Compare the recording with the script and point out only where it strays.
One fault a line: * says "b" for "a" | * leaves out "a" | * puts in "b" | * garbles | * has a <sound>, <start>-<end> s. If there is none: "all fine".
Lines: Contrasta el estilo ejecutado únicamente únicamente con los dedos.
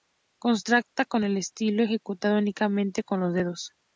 * puts in "con"
* leaves out "únicamente"